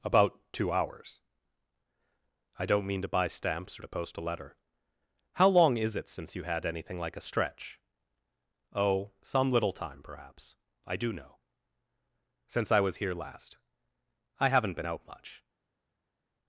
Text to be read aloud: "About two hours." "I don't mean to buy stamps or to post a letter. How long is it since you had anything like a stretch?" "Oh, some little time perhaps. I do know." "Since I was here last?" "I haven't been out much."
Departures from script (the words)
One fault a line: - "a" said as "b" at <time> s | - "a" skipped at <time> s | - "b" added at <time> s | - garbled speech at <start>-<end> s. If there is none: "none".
none